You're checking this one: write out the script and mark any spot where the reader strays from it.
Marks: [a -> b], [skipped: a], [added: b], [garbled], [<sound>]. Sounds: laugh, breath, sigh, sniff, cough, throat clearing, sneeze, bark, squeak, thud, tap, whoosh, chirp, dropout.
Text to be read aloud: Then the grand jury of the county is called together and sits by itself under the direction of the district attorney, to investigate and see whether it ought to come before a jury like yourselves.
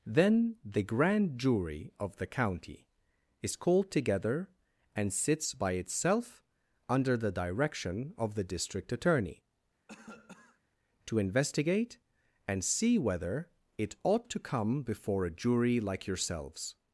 Then the grand jury of the county is called together and sits by itself under the direction of the district attorney, [cough] to investigate and see whether it ought to come before a jury like yourselves.